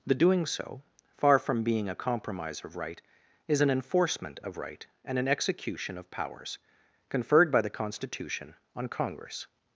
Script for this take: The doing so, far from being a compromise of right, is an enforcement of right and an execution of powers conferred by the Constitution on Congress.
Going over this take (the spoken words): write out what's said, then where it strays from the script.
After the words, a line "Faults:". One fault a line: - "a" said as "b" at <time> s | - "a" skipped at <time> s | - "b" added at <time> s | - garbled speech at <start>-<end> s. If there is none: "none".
The doing so, far from being a compromise of right, is an enforcement of right and an execution of powers conferred by the Constitution on Congress.
Faults:
none